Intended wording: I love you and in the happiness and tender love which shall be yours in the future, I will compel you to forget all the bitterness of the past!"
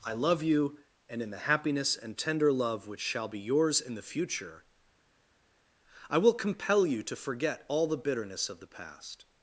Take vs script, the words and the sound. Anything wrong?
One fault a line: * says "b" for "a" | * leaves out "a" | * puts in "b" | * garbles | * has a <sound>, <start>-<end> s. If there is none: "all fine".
all fine